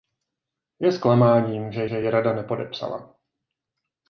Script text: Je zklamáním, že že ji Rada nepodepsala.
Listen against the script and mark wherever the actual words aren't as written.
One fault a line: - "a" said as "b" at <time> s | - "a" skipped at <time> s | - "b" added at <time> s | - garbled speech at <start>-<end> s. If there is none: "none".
none